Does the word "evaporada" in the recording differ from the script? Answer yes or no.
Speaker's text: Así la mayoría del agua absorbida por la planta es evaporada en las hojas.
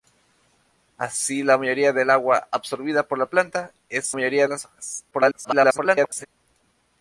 yes